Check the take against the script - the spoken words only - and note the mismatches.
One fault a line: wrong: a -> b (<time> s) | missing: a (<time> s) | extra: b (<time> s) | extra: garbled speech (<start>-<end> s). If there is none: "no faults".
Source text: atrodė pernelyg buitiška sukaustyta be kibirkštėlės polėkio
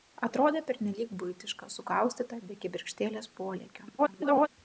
extra: garbled speech (4.0-4.5 s)